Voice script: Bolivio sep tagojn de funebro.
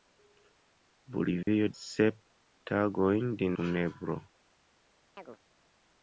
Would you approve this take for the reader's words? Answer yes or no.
yes